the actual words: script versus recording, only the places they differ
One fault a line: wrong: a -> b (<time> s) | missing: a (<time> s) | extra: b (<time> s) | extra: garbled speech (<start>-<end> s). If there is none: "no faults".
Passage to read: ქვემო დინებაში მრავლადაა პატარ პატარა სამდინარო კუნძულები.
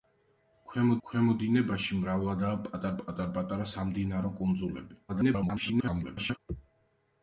extra: ქვემო (1.1 s)
extra: პატარ (3.0 s)
extra: garbled speech (5.1-6.4 s)